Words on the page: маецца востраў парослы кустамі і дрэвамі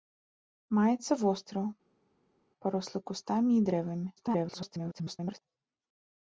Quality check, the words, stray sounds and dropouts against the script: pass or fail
fail